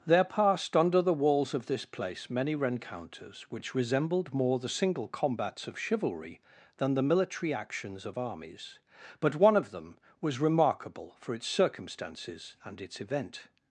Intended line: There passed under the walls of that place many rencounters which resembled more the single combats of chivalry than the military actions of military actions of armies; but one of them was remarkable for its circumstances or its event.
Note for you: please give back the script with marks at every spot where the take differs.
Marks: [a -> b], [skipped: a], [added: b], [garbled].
There passed under the walls of [that -> this] place many rencounters which resembled more the single combats of chivalry than the military actions of [skipped: military actions of] armies; but one of them was remarkable for its circumstances [or -> and] its event.